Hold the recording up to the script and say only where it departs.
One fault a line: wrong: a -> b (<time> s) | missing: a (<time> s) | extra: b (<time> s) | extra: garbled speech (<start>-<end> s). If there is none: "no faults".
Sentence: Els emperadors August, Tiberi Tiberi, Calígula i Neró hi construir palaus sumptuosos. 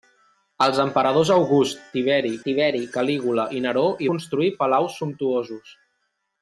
no faults